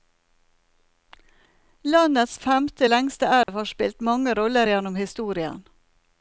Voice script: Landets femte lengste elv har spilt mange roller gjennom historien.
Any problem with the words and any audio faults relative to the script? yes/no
yes